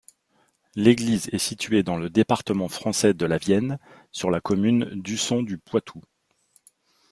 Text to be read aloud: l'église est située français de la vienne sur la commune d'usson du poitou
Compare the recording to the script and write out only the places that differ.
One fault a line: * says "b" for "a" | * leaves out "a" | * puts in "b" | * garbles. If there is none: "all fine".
* puts in "dans le département"